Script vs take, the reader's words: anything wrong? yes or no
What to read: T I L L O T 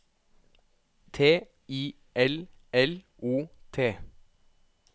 no